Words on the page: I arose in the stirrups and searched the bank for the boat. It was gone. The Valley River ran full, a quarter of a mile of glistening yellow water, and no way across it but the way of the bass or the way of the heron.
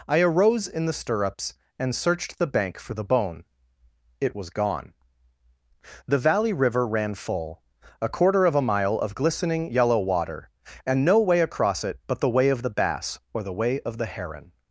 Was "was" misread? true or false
false